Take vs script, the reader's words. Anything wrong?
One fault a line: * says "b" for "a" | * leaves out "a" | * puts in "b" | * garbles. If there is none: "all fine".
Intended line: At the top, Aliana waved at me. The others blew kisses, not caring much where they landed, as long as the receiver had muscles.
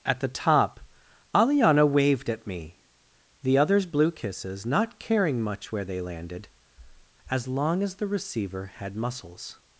all fine